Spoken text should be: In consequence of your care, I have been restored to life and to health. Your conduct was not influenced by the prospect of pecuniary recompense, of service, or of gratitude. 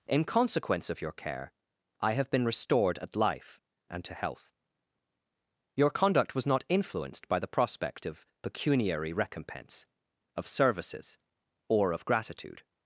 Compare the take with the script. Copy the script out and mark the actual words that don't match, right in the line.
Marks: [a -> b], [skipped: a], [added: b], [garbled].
In consequence of your care, I have been restored [to -> at] life and to health. Your conduct was not influenced by the prospect of pecuniary recompense, of [service, -> services] or of gratitude.